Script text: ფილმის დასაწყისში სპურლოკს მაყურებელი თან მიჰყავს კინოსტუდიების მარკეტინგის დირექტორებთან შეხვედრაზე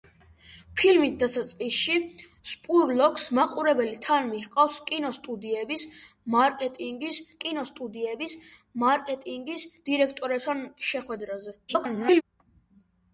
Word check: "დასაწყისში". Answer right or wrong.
right